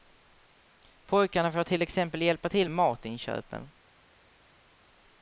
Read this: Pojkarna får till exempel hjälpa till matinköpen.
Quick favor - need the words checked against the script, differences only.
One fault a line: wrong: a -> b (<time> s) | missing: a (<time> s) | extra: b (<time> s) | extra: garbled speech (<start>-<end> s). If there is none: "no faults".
no faults